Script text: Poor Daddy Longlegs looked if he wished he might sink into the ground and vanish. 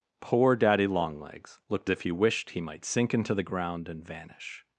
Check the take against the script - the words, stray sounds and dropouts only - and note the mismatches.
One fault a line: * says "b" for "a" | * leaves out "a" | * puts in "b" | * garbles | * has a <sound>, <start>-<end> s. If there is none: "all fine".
all fine